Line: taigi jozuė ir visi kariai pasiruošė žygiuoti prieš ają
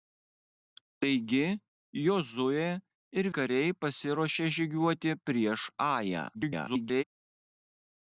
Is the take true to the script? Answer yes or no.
no